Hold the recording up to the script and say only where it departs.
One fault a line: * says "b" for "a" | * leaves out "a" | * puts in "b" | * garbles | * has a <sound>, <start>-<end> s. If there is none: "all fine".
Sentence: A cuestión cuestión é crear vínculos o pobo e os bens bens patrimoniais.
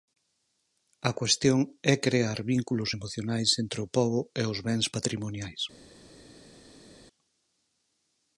* leaves out "cuestión"
* puts in "emocionais entre"
* leaves out "bens"